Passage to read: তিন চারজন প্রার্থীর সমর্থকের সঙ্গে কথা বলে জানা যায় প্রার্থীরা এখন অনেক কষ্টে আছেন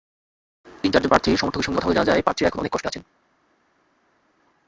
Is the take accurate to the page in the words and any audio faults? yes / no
yes